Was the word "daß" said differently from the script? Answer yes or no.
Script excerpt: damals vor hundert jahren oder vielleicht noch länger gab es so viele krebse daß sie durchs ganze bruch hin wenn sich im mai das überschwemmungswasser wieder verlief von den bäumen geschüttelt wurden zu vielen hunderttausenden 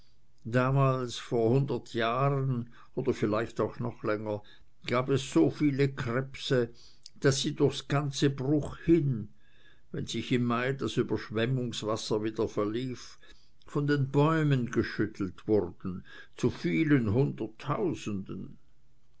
no